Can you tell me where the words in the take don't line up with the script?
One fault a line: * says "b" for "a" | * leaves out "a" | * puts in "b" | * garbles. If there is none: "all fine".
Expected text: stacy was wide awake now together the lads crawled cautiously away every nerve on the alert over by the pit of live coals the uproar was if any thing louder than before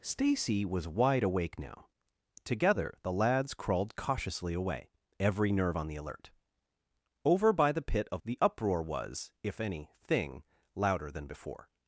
* leaves out "live coals"